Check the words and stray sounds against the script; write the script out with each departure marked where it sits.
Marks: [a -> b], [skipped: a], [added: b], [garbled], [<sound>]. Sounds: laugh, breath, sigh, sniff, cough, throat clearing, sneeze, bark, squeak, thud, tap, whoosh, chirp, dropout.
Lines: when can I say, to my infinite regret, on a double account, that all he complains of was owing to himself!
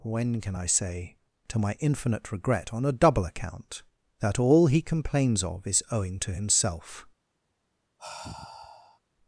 when can I say, to my infinite regret, on a double account, that all he complains of [was -> is] owing to himself! [sigh]